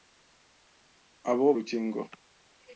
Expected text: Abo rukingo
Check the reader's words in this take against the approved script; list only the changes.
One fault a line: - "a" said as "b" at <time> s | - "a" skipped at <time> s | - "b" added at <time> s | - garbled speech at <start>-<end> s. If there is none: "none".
none